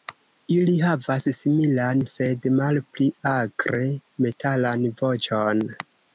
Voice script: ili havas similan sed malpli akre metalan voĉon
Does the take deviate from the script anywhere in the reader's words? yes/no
no